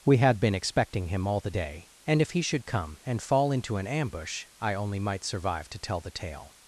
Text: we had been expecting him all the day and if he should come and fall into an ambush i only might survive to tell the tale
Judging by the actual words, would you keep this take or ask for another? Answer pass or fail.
pass